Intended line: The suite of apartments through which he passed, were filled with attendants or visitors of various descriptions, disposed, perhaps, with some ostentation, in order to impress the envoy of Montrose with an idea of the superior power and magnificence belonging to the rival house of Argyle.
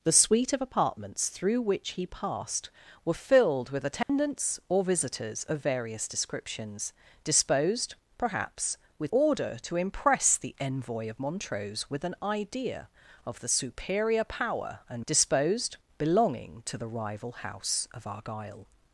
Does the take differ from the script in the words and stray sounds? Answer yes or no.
yes